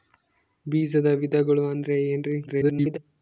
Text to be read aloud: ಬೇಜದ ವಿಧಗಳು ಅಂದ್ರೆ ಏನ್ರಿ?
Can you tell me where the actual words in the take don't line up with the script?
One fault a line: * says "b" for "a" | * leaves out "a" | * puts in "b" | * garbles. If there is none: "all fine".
* garbles